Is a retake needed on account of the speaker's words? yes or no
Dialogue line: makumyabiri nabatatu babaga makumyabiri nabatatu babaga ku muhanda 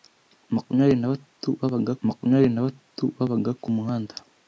no